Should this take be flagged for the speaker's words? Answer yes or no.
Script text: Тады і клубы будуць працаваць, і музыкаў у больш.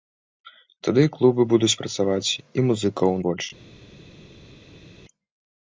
no